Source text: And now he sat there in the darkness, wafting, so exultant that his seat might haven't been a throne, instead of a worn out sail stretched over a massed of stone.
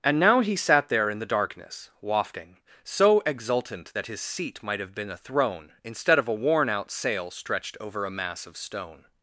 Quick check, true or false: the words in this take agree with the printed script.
false